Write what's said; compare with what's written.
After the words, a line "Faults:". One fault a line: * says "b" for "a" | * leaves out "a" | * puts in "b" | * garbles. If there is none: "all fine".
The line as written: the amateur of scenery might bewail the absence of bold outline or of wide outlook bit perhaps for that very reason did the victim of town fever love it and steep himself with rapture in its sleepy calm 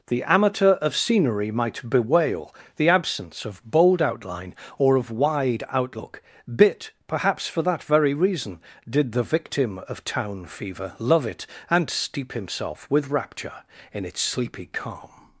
the amateur of scenery might bewail the absence of bold outline or of wide outlook bit perhaps for that very reason did the victim of town fever love it and steep himself with rapture in its sleepy calm
Faults:
all fine